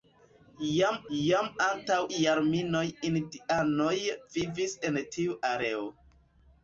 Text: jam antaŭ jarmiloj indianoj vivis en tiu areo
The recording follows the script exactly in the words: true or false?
false